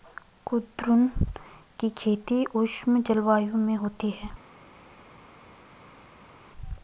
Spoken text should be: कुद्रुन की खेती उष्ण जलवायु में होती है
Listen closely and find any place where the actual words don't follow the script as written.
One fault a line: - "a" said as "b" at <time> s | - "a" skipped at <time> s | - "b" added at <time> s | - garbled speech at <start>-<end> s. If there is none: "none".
none